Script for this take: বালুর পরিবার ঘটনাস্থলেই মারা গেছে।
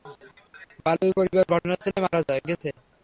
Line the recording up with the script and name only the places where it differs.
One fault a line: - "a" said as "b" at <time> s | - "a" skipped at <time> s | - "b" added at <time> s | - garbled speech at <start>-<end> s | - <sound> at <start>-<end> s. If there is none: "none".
none